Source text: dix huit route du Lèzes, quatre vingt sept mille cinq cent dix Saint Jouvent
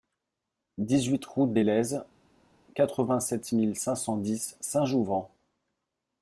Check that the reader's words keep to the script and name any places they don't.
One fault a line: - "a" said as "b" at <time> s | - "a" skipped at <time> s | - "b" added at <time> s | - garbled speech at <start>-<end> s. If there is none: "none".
- "du" said as "des" at 1.5 s